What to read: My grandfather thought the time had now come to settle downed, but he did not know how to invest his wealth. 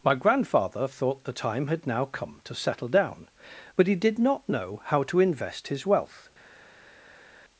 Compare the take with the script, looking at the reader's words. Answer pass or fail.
fail